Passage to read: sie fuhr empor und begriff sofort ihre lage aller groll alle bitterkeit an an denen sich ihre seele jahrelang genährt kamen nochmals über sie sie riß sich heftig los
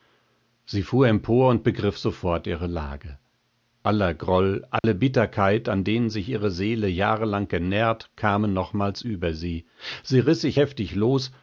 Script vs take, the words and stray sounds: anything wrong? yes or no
yes